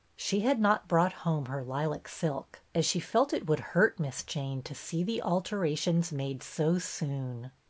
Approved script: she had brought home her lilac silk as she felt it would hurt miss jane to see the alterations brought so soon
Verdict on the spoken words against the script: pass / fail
fail